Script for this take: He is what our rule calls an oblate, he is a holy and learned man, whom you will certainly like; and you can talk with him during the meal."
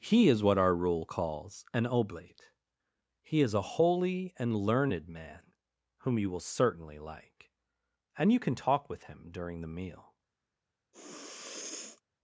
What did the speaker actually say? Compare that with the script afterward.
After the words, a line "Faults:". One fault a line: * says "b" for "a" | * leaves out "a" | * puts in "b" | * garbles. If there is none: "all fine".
He is what our rule calls an oblate, he is a holy and learned man, whom you will certainly like; and you can talk with him during the meal."
Faults:
all fine